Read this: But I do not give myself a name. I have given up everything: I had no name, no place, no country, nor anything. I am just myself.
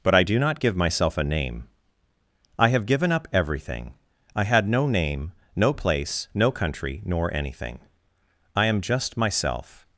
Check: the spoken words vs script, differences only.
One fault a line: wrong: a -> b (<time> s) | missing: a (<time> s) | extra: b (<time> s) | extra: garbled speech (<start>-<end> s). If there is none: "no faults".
no faults